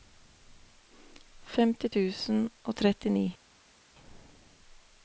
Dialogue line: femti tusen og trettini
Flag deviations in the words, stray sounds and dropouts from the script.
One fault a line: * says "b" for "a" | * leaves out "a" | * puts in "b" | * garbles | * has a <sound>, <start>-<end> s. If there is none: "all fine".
all fine